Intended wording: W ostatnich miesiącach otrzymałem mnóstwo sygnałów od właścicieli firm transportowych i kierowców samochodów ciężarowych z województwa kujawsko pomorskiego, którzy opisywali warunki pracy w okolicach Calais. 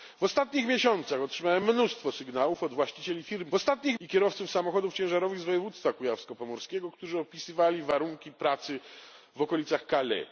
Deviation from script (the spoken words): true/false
true